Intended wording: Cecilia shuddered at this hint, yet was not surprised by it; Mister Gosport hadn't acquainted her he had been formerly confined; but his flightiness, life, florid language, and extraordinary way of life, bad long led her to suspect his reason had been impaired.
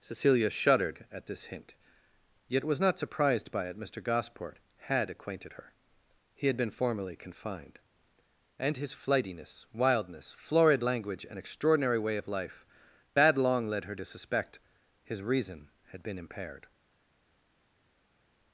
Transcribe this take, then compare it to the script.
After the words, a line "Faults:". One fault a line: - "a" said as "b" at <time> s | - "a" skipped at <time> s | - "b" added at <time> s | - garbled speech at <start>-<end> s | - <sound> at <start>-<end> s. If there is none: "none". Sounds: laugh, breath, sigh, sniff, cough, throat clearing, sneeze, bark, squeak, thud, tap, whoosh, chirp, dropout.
Cecilia shuddered at this hint, yet was not surprised by it; Mister Gosport had acquainted her he had been formerly confined; and his flightiness, wildness, florid language, and extraordinary way of life, bad long led her to suspect his reason had been impaired.
Faults:
- "hadn't" said as "had" at 4.9 s
- "but" said as "and" at 8.6 s
- "life" said as "wildness" at 9.7 s